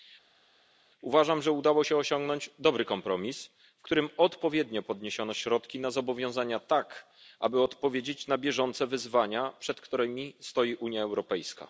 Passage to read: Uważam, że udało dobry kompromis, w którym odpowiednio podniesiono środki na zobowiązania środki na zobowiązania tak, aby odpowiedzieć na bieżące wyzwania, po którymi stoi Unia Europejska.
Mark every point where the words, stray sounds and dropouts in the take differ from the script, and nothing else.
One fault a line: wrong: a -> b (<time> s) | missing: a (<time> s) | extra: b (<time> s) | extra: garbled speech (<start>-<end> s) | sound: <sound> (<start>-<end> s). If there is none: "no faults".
extra: się osiągnąć (1.8 s)
missing: środki na zobowiązania (6.6 s)
wrong: po -> przed (9.6 s)